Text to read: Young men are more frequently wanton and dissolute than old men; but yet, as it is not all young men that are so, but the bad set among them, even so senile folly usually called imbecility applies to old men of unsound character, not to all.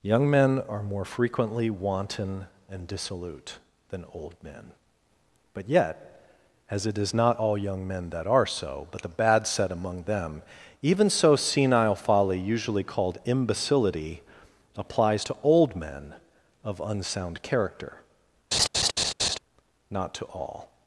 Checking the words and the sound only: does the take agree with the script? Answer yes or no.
no